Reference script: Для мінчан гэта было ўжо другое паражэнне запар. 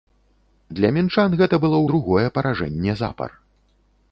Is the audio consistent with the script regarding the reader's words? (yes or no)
no